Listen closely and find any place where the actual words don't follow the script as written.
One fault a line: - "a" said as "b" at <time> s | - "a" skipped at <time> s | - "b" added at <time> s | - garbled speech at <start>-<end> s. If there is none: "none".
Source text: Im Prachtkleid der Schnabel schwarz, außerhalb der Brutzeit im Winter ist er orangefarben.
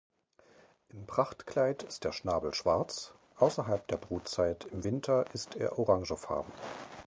- "ist" added at 1.8 s